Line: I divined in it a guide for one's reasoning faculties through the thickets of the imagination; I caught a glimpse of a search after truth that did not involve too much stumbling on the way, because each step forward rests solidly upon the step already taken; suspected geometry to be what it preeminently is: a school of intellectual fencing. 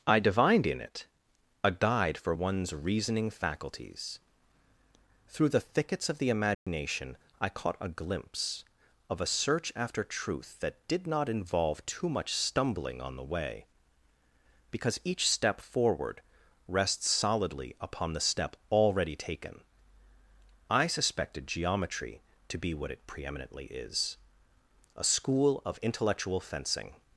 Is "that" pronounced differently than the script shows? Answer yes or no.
no